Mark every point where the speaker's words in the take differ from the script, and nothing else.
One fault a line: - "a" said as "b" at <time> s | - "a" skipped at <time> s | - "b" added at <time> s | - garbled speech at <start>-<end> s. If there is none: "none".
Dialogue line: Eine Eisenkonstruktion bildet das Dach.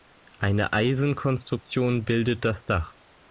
none